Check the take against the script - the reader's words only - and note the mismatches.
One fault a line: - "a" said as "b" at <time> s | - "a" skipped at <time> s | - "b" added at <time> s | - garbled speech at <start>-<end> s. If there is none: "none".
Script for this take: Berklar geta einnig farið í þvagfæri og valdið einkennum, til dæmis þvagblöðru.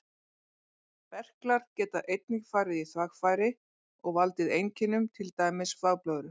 none